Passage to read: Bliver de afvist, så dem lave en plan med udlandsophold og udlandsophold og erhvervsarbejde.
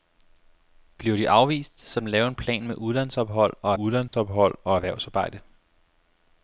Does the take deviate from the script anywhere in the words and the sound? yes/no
yes